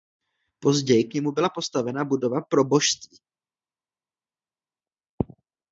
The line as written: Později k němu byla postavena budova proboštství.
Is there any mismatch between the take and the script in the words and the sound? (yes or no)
no